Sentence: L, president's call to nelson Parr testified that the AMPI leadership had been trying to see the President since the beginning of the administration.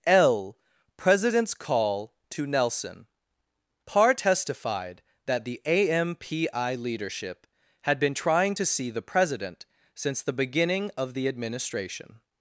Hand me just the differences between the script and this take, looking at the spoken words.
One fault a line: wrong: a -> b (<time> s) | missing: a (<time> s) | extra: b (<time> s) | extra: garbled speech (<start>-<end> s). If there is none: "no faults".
no faults